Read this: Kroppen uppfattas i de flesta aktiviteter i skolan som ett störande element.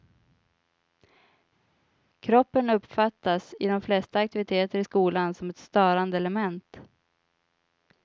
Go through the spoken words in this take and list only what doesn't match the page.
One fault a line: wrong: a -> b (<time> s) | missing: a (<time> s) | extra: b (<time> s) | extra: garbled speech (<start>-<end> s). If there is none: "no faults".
no faults